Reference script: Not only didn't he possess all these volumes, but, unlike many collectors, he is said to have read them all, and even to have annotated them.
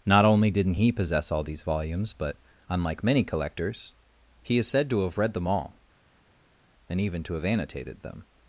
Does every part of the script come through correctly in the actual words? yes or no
yes